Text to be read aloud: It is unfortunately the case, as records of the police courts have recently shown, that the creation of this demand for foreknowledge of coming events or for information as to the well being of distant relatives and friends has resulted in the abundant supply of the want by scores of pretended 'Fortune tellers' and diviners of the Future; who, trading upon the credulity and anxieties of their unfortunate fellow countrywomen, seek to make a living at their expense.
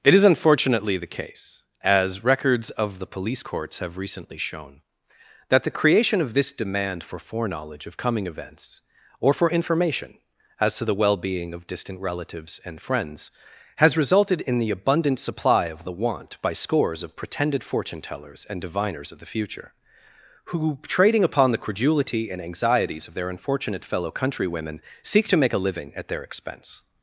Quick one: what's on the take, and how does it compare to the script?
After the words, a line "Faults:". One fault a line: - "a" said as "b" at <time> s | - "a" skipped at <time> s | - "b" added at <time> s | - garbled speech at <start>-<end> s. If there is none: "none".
It is unfortunately the case, as records of the police courts have recently shown, that the creation of this demand for foreknowledge of coming events or for information as to the well being of distant relatives and friends has resulted in the abundant supply of the want by scores of pretended 'Fortune tellers' and diviners of the Future; who, trading upon the credulity and anxieties of their unfortunate fellow countrywomen, seek to make a living at their expense.
Faults:
none